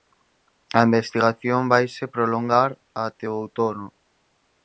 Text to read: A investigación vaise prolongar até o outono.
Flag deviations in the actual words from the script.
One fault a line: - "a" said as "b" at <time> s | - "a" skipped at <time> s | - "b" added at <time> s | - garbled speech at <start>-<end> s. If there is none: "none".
none